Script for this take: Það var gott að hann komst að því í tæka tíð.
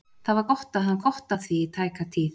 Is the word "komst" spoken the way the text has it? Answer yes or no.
no